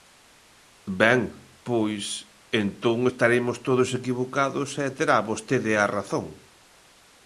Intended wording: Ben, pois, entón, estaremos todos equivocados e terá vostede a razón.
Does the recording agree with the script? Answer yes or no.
yes